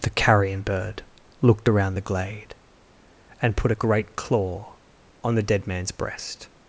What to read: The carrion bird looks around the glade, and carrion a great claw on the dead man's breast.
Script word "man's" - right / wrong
right